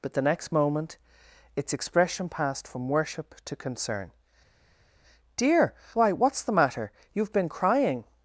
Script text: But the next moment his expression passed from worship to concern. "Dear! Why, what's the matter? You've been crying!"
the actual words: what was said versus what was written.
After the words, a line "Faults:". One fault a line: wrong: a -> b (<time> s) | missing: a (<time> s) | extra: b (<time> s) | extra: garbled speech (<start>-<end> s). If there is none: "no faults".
But the next moment its expression passed from worship to concern. "Dear! Why, what's the matter? You've been crying!"
Faults:
wrong: his -> its (1.6 s)